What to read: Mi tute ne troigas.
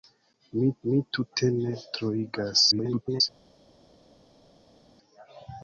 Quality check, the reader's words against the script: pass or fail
fail